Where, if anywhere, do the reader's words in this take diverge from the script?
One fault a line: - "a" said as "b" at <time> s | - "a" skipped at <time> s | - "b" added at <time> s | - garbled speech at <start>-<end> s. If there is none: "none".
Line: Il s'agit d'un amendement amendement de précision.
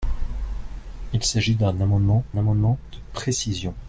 none